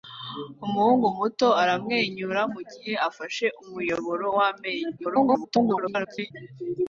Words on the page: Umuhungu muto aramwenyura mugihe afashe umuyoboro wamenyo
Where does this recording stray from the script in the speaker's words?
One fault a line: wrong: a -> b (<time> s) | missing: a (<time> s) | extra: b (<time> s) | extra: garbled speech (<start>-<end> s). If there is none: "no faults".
extra: garbled speech (5.0-6.3 s)